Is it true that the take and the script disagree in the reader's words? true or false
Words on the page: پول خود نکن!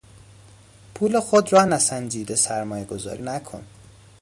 true